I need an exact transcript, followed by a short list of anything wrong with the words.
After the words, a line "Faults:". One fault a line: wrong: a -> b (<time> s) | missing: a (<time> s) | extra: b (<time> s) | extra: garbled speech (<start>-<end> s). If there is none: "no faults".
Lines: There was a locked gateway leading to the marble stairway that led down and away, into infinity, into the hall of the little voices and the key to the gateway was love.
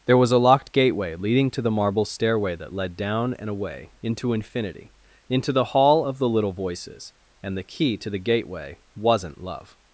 There was a locked gateway leading to the marble stairway that led down and away, into infinity, into the hall of the little voices and the key to the gateway wasn't love.
Faults:
wrong: was -> wasn't (9.0 s)